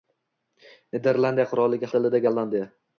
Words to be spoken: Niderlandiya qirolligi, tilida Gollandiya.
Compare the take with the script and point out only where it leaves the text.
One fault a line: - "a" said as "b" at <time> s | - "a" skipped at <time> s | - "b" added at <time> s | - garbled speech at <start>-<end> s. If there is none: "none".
none